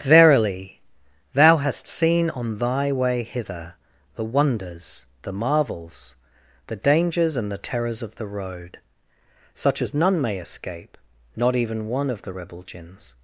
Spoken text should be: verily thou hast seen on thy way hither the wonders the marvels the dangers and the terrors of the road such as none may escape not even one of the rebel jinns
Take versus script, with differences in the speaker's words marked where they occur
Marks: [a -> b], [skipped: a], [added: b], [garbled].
verily thou hast seen on thy way hither the wonders the marvels the dangers and the terrors of the road such as none may escape not even one of the rebel jinns